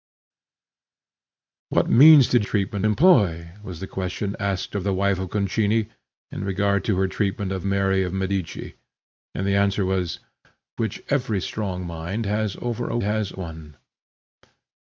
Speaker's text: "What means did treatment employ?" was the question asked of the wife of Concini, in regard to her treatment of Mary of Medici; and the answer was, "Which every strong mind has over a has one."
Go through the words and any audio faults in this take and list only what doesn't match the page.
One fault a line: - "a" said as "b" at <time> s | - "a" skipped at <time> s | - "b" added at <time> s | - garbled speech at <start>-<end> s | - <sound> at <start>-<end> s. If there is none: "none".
none